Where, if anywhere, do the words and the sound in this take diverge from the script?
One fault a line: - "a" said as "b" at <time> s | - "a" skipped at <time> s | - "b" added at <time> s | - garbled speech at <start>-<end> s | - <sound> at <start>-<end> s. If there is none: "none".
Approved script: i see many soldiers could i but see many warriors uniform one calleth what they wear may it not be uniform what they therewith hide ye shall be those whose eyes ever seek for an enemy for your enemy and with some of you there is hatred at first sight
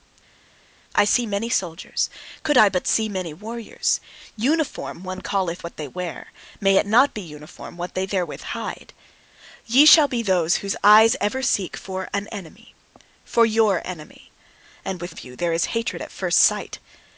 - "some" skipped at 15.2 s